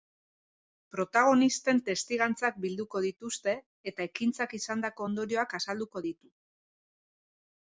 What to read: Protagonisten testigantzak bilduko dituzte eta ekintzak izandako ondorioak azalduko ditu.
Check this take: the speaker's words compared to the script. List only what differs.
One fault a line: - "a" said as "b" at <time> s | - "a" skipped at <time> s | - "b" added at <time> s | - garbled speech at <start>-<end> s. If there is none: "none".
none